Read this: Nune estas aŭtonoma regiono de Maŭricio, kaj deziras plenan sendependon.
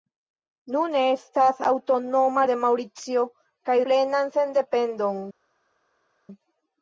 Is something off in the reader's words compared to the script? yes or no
yes